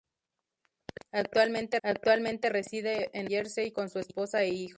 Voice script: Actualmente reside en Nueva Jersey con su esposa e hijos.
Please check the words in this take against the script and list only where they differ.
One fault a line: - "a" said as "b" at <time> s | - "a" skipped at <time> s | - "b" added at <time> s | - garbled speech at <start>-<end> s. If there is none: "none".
- "actualmente" added at 1.8 s
- "Nueva" skipped at 3.3 s